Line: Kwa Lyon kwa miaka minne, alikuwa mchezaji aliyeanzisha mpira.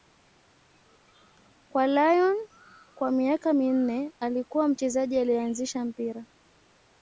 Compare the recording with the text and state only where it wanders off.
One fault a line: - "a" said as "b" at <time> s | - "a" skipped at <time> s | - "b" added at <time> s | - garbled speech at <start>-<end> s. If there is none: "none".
none